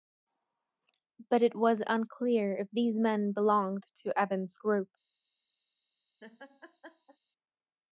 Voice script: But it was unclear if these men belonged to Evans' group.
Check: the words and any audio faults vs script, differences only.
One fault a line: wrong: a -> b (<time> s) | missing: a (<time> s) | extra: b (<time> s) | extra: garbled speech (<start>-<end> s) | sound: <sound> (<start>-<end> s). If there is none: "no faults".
sound: laugh (6.2-7.2 s)